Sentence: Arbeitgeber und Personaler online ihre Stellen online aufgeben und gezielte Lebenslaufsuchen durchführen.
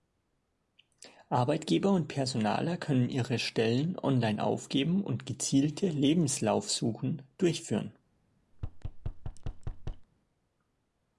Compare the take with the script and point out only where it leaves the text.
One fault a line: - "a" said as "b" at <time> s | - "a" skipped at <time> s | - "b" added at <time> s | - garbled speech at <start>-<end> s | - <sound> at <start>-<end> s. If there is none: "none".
- "online" said as "können" at 2.8 s
- thud at 8.5-10.1 s